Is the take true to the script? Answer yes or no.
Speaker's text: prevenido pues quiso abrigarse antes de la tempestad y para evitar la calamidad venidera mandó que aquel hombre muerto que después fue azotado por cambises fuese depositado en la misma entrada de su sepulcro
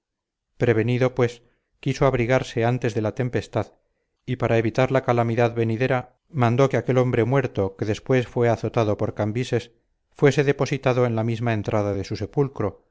yes